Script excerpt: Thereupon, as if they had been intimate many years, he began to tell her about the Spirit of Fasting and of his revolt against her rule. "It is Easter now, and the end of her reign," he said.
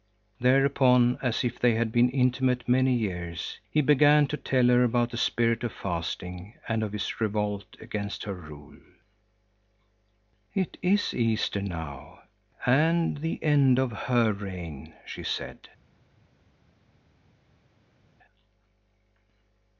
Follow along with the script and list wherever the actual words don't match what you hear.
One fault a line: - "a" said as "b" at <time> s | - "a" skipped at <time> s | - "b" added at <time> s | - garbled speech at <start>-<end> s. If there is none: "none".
- "he" said as "she" at 15.1 s